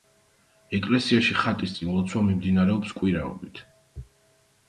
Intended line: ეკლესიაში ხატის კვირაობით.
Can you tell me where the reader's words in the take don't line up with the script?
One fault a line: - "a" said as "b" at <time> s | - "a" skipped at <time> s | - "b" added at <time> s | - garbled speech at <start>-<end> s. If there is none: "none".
- "წინ ლოცვა მიმდინარეობს" added at 1.8 s